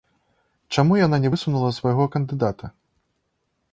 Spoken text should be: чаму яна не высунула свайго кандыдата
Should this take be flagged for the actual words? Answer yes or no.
no